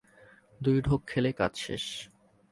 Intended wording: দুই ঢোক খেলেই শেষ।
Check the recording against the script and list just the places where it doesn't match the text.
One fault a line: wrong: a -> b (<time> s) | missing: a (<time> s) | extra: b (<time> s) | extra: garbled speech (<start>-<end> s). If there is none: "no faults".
extra: কাজ (1.3 s)